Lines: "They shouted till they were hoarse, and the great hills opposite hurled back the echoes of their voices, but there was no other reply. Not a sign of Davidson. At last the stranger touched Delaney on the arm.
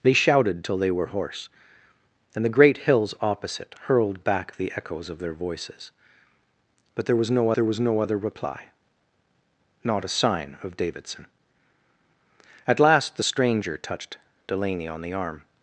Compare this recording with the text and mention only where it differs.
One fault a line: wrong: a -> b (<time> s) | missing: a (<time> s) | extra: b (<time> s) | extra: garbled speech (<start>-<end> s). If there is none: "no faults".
extra: there was no (7.5 s)